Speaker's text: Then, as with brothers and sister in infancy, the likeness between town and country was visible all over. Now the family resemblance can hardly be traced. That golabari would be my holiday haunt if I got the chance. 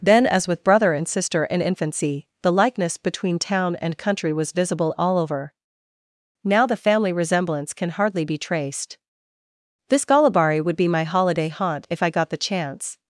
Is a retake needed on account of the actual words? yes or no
yes